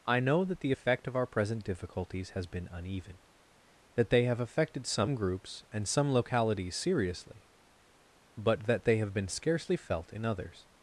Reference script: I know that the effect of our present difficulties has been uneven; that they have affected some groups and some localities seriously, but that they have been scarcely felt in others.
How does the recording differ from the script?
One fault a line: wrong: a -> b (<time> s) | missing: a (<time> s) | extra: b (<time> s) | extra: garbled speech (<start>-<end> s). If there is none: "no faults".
no faults